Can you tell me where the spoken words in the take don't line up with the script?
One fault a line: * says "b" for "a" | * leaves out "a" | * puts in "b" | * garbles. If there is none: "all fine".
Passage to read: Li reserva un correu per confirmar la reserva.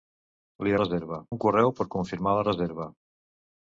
all fine